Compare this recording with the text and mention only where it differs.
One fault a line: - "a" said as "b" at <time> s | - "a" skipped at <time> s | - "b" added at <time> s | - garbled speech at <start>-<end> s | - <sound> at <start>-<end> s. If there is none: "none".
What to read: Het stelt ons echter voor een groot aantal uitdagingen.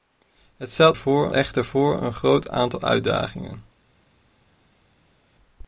- "ons" said as "voor" at 1.0 s